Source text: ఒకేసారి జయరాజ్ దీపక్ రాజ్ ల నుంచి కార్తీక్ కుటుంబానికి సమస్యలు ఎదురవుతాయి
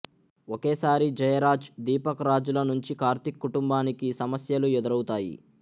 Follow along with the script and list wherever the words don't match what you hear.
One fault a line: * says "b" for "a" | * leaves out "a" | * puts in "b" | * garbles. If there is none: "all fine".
all fine